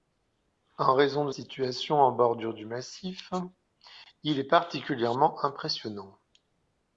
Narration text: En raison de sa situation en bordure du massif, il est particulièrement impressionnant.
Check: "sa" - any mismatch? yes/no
yes